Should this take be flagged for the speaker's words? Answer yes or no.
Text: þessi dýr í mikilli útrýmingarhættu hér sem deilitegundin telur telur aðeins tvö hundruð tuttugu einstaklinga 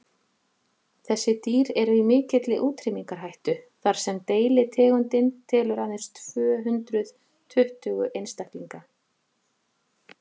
yes